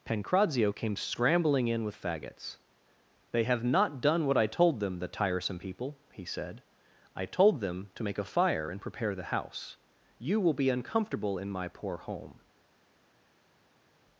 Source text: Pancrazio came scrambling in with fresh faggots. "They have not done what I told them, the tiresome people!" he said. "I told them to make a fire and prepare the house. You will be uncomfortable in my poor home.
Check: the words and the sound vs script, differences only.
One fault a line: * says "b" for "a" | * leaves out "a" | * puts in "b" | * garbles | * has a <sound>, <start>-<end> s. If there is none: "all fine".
* leaves out "fresh"